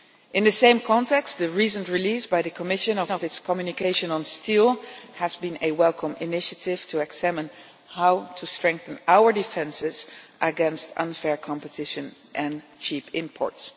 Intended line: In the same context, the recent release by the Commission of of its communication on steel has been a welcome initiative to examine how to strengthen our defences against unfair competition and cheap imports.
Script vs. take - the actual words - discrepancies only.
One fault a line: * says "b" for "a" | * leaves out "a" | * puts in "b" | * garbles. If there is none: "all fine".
all fine